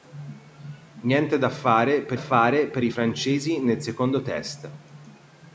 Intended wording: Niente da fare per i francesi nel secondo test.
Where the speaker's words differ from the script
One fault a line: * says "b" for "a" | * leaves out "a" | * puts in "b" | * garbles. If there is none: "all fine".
* puts in "fare per"